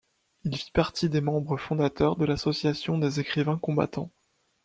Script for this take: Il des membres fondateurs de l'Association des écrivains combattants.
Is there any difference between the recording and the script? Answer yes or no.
yes